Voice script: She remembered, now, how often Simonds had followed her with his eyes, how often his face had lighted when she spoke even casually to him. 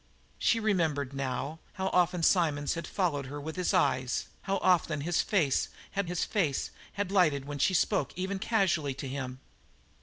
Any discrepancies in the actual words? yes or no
yes